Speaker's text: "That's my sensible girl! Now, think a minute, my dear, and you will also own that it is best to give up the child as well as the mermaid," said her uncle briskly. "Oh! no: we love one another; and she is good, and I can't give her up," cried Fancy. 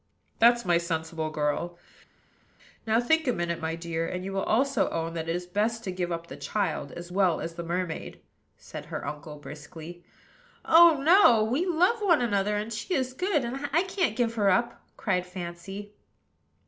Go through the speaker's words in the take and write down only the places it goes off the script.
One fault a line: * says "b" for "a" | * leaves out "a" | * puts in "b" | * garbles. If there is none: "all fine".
all fine